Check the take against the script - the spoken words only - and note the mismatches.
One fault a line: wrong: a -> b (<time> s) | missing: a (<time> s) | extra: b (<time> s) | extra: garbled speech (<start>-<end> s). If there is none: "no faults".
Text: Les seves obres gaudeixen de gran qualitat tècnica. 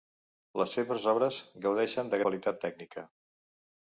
missing: gran (2.2 s)